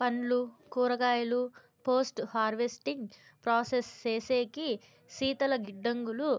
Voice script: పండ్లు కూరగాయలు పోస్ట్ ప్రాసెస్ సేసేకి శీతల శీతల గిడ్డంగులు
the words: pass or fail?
fail